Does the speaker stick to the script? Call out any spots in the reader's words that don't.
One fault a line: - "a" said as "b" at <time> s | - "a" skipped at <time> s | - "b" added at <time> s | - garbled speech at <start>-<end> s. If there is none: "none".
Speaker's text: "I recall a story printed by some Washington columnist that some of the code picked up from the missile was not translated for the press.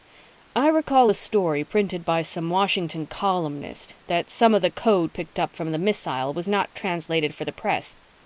none